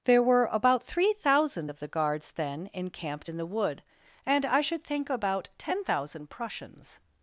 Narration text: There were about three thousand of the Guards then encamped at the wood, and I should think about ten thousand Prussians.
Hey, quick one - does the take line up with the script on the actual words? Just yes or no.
no